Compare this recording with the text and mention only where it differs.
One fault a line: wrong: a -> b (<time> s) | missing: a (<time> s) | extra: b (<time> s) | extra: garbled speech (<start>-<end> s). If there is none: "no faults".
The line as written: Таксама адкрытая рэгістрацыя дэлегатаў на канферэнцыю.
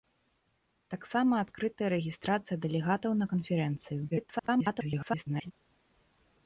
extra: garbled speech (4.1-5.5 s)